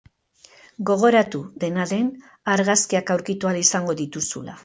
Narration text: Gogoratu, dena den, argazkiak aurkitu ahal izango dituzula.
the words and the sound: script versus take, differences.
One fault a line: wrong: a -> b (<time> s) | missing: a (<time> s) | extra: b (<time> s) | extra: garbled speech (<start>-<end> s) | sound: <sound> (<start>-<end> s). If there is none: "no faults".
no faults